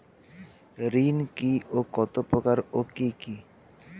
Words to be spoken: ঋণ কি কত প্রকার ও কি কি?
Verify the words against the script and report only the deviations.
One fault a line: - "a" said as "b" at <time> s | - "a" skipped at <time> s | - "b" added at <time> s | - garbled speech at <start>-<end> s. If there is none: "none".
- "ও" added at 1.7 s